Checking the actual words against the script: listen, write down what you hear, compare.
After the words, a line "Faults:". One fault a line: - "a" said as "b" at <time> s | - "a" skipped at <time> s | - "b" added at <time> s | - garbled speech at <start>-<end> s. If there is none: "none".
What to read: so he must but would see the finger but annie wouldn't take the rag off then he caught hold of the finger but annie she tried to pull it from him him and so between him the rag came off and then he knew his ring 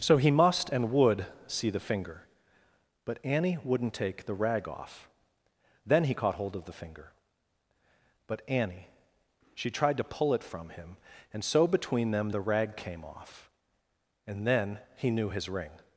so he must and would see the finger but annie wouldn't take the rag off then he caught hold of the finger but annie she tried to pull it from him and so between them the rag came off and then he knew his ring
Faults:
- "but" said as "and" at 0.7 s
- "him" skipped at 11.0 s
- "him" said as "them" at 12.1 s